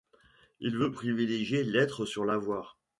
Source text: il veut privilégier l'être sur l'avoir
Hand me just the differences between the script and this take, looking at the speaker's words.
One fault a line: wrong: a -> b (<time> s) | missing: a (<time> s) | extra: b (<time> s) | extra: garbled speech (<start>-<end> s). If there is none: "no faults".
no faults